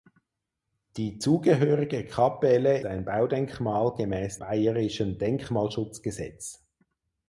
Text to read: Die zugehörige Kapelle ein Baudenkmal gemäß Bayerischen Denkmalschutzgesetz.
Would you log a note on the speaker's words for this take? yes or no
no